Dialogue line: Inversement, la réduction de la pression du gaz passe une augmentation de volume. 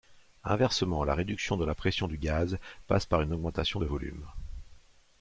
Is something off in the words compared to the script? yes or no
yes